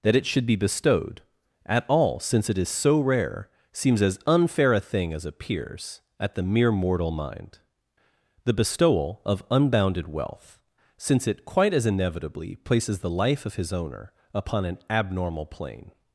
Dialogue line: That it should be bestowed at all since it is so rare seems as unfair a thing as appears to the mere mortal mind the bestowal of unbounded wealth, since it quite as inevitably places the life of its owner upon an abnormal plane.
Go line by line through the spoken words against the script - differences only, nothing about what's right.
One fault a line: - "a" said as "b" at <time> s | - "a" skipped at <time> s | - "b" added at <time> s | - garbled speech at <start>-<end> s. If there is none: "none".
- "to" said as "at" at 6.2 s
- "its" said as "his" at 13.6 s